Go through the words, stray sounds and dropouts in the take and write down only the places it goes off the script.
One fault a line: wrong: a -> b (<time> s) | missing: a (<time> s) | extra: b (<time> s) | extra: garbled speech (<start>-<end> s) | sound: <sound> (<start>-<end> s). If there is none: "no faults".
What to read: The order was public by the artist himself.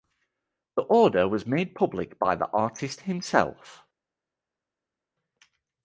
extra: made (1.4 s)